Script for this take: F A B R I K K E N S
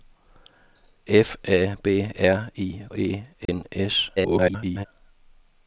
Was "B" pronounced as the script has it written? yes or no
yes